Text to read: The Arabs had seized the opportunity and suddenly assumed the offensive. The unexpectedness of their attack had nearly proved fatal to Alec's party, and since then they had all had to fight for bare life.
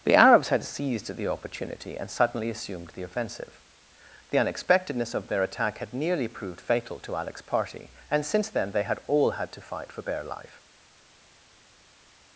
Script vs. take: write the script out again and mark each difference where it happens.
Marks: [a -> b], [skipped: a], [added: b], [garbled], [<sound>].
The Arabs had seized the opportunity and suddenly assumed the offensive. The unexpectedness of their attack had nearly proved fatal to Alec's party, and since then they had all had to fight for bare life.